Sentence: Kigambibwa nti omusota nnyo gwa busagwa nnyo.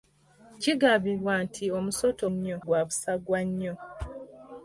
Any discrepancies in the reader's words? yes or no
no